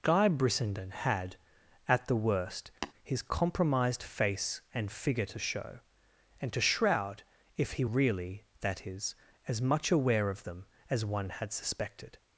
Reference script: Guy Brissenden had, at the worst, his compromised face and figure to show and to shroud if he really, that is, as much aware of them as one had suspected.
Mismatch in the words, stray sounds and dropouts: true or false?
true